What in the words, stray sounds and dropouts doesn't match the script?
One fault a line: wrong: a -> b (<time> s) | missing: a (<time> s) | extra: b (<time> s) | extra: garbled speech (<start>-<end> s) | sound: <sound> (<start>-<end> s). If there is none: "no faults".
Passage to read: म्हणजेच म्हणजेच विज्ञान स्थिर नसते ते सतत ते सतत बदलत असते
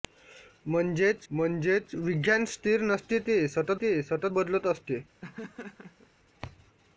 sound: laugh (5.2-6.1 s)